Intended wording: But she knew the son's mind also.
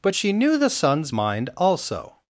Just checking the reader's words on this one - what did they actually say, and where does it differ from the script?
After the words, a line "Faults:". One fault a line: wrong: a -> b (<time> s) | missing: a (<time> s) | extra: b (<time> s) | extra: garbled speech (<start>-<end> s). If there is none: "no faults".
But she knew the son's mind also.
Faults:
no faults